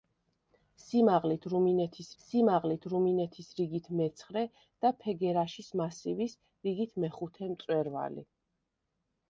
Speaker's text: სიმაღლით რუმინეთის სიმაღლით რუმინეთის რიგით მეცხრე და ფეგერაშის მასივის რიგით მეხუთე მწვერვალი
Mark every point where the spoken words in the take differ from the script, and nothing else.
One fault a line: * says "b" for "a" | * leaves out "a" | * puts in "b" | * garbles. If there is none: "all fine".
all fine